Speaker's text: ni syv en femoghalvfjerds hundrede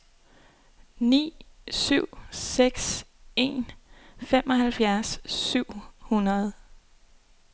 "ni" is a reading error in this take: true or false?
false